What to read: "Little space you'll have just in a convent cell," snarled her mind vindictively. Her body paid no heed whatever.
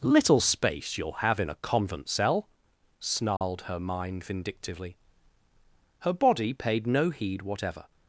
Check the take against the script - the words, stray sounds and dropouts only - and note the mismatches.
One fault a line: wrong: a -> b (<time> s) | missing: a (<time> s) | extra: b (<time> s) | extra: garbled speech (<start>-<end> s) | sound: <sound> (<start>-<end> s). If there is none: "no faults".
missing: just (1.4 s)
sound: dropout (3.4-3.4 s)